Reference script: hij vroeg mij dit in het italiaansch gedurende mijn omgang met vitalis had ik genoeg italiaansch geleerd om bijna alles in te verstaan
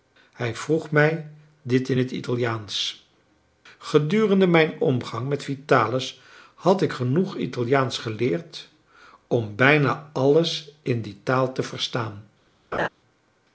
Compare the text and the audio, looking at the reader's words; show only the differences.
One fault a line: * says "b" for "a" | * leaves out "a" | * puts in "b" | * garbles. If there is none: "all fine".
* puts in "die taal"